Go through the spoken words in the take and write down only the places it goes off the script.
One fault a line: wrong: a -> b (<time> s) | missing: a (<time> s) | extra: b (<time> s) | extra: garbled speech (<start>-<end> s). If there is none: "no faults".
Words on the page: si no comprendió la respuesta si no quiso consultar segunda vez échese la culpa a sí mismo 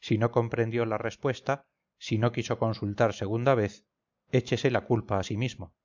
no faults